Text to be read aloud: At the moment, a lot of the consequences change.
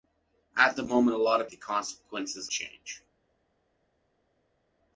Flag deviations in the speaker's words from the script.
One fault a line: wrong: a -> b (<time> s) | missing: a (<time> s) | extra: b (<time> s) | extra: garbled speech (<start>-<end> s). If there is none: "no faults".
no faults